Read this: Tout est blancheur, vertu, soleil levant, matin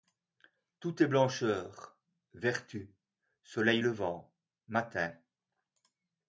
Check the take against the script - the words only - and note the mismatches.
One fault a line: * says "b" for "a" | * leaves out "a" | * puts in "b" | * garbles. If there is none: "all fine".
all fine